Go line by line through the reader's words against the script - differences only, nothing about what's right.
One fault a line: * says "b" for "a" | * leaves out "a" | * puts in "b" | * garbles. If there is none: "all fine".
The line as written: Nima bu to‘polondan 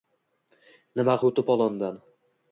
all fine